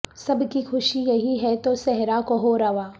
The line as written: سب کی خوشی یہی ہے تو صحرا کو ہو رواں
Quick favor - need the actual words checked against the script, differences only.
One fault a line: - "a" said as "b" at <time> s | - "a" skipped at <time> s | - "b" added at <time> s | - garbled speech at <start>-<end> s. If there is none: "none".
none